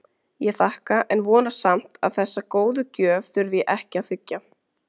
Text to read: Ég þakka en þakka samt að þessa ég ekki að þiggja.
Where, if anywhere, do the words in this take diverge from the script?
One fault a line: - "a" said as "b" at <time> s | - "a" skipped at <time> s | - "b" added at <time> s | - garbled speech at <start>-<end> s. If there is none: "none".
- "þakka" said as "vona" at 1.3 s
- "góðu gjöf þurfi" added at 2.6 s